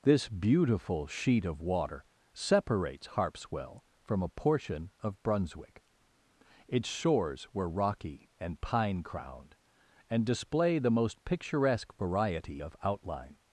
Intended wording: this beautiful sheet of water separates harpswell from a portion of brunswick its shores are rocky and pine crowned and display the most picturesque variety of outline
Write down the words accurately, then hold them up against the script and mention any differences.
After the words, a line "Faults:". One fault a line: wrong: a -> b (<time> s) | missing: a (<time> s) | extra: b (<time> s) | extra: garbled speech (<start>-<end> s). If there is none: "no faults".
this beautiful sheet of water separates harpswell from a portion of brunswick its shores were rocky and pine crowned and display the most picturesque variety of outline
Faults:
wrong: are -> were (7.5 s)